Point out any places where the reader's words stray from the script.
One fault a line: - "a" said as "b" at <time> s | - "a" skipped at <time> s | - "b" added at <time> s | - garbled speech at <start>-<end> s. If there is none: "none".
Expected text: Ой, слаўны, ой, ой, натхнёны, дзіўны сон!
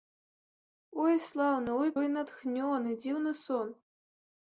none